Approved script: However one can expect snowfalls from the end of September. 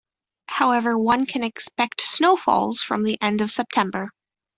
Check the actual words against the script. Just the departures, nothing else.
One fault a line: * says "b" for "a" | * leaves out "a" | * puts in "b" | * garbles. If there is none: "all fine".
all fine